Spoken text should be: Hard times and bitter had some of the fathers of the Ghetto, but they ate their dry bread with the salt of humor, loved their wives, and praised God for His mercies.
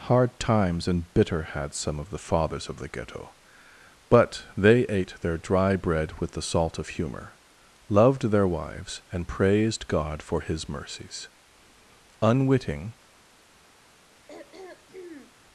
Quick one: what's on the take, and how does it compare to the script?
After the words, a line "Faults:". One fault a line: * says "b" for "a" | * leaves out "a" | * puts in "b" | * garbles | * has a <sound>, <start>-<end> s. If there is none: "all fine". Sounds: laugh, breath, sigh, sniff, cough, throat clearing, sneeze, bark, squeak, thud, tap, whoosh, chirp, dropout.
Hard times and bitter had some of the fathers of the Ghetto, but they ate their dry bread with the salt of humor, loved their wives, and praised God for His mercies. Unwitting
Faults:
* puts in "Unwitting"
* has a throat clearing, 14.3-15.3 s